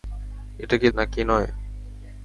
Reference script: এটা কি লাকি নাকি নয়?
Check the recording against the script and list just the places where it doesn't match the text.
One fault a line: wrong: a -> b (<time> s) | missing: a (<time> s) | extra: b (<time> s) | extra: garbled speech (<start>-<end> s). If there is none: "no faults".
missing: লাকি (0.9 s)